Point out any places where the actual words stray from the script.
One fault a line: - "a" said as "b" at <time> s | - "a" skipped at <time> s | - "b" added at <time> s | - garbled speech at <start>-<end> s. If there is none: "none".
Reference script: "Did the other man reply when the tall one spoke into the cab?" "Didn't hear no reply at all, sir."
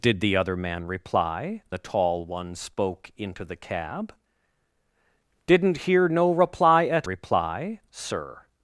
- "when" skipped at 1.6 s
- "all" said as "reply" at 7.0 s